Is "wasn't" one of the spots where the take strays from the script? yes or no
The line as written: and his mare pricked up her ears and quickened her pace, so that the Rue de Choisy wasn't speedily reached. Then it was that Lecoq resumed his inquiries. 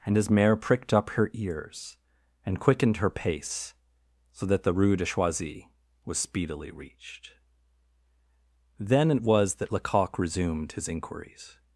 yes